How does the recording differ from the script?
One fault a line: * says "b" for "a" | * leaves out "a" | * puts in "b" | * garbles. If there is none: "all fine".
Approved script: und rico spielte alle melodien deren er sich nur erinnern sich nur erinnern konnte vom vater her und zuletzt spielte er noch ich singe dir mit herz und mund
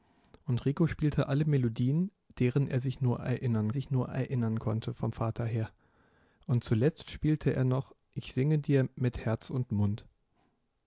all fine